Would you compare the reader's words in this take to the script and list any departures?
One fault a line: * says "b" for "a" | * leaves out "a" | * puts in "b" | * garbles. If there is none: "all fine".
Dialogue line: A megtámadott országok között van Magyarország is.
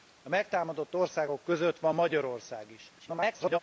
* garbles